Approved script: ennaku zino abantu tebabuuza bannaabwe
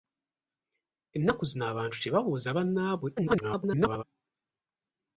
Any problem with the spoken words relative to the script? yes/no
yes